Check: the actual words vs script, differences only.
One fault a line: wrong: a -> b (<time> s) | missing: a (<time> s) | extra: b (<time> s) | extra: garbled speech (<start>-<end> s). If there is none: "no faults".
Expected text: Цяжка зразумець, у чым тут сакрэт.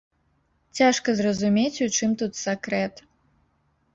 no faults